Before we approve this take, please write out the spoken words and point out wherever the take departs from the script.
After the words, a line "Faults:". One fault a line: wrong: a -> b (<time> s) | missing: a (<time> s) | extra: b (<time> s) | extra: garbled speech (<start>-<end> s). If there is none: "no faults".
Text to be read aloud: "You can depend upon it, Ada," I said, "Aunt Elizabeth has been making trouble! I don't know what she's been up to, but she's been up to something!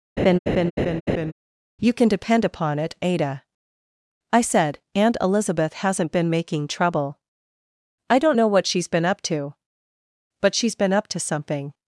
"You can depend upon it, Ada," I said, "Aunt Elizabeth hasn't been making trouble! I don't know what she's been up to, but she's been up to something!
Faults:
wrong: has -> hasn't (5.7 s)